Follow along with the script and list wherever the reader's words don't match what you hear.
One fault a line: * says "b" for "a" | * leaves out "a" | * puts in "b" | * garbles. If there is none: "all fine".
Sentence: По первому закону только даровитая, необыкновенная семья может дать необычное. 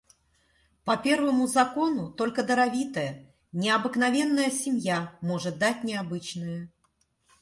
all fine